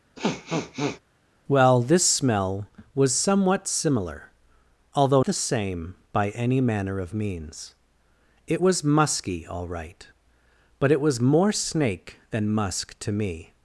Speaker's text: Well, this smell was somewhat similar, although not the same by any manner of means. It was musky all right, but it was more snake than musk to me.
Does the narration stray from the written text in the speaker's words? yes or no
yes